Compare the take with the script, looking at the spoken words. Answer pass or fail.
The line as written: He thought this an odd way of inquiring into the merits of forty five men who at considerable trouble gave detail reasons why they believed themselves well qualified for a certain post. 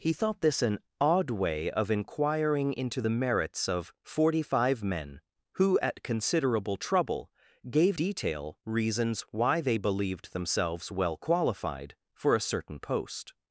pass